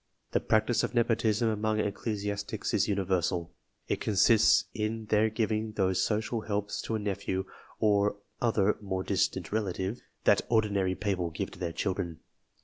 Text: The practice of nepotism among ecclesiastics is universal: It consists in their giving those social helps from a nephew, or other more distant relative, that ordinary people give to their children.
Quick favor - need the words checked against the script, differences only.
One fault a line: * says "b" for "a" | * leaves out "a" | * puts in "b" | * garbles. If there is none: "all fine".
* says "to" for "from"